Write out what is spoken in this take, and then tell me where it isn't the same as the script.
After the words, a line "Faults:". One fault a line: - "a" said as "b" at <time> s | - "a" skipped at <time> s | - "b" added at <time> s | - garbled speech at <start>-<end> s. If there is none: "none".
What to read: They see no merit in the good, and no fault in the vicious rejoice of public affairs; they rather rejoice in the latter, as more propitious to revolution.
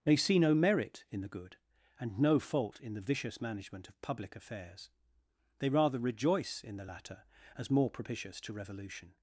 They see no merit in the good, and no fault in the vicious management of public affairs; they rather rejoice in the latter, as more propitious to revolution.
Faults:
- "rejoice" said as "management" at 3.4 s